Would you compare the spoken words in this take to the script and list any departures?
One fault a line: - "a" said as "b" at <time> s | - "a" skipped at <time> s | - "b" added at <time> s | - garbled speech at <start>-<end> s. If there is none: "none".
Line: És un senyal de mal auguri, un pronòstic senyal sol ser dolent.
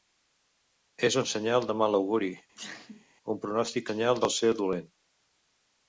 none